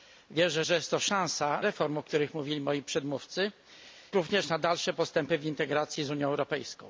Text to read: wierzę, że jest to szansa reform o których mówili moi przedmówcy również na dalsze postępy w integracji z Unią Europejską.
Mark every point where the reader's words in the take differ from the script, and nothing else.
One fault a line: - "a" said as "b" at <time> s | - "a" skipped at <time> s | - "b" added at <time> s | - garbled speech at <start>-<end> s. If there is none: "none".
none